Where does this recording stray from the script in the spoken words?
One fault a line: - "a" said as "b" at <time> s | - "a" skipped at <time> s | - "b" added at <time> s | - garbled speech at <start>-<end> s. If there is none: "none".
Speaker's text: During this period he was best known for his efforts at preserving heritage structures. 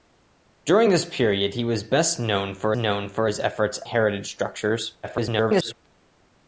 - "known for" added at 2.8 s
- "at preserving" skipped at 3.8 s
- garbled speech at 5.0-5.7 s